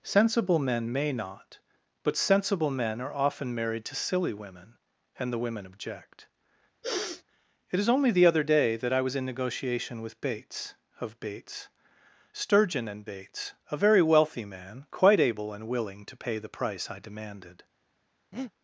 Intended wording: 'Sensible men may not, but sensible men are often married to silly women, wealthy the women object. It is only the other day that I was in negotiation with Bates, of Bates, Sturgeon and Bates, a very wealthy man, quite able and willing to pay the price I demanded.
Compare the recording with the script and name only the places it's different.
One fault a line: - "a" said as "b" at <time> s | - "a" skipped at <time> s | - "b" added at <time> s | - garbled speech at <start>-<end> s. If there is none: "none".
- "wealthy" said as "and" at 5.2 s